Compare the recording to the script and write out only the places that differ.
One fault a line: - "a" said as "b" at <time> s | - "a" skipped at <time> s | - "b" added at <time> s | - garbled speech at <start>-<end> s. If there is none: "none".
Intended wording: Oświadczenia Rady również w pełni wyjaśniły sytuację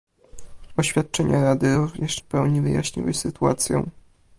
none